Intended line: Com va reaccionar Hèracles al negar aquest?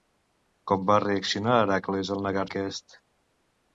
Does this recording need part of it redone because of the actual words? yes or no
no